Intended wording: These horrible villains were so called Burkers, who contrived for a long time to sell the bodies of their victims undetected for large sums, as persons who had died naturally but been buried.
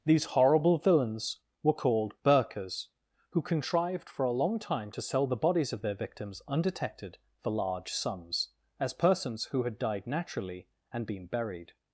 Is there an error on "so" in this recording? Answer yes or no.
yes